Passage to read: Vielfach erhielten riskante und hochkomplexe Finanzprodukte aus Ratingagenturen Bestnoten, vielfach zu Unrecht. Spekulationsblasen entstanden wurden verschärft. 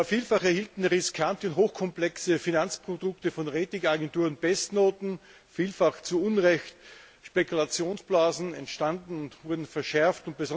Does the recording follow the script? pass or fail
fail